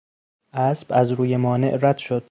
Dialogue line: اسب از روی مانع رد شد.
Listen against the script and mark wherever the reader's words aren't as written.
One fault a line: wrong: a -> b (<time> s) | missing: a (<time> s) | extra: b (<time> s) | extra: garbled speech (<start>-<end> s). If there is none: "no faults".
no faults